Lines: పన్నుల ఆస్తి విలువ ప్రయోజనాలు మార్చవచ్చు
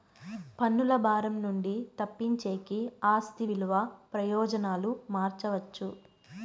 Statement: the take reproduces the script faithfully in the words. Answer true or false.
false